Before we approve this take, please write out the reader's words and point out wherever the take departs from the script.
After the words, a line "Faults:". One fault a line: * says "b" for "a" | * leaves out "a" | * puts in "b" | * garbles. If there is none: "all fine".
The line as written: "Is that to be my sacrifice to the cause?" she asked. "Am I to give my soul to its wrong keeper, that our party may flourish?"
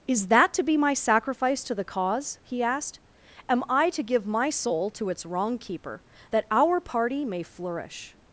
"Is that to be my sacrifice to the cause?" he asked. "Am I to give my soul to its wrong keeper, that our party may flourish?"
Faults:
* says "he" for "she"